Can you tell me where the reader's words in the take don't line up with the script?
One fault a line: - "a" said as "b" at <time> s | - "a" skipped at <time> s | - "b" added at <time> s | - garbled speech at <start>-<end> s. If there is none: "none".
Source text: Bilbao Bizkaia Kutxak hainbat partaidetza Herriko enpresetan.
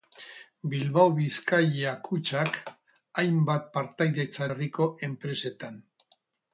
none